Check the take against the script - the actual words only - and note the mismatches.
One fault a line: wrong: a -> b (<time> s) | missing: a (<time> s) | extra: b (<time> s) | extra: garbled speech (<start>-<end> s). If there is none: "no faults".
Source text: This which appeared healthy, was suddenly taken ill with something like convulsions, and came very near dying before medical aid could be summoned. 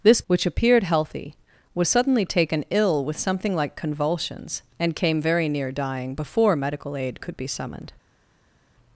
no faults